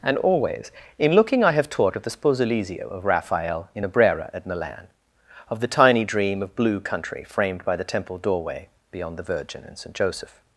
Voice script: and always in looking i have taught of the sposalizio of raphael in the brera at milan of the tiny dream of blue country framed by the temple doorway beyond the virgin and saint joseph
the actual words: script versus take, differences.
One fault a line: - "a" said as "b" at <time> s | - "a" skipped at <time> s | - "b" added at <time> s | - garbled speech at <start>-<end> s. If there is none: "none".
none